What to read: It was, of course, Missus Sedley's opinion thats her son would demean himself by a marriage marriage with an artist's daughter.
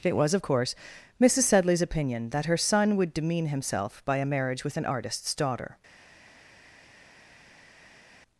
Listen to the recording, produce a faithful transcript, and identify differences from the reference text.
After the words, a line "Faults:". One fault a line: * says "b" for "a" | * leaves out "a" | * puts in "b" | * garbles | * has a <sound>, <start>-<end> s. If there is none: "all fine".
It was, of course, Missus Sedley's opinion that her son would demean himself by a marriage with an artist's daughter.
Faults:
* says "that" for "thats"
* leaves out "marriage"